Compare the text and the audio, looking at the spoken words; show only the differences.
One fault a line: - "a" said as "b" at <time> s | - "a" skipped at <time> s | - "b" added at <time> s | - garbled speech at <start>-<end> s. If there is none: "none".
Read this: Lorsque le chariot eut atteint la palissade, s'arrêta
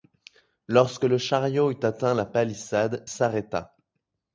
none